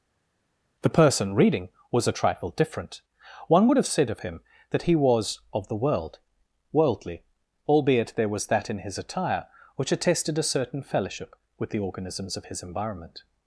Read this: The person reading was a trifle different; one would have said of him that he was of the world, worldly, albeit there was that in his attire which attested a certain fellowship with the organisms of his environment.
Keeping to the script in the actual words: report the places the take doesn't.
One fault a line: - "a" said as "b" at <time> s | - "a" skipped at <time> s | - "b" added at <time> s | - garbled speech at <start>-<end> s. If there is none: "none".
none